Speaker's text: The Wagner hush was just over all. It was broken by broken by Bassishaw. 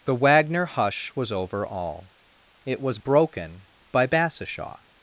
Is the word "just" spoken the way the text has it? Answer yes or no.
no